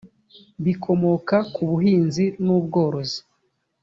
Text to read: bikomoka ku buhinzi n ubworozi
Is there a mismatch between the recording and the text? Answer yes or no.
no